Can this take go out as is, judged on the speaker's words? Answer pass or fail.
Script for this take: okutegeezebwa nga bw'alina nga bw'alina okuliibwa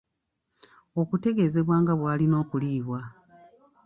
fail